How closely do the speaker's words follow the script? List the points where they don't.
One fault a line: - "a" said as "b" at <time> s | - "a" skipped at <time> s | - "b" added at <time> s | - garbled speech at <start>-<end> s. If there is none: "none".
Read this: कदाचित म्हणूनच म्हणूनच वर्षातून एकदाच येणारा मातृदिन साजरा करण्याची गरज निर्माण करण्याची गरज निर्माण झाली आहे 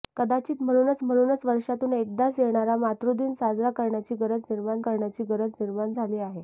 none